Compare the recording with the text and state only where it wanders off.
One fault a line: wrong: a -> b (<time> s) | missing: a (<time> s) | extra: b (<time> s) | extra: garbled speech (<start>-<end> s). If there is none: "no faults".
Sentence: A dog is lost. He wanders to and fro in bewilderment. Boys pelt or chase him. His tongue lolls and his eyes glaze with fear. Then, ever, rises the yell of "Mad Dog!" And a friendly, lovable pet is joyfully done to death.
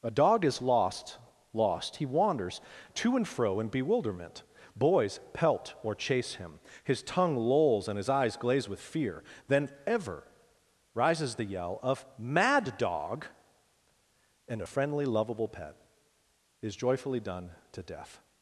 extra: lost (1.5 s)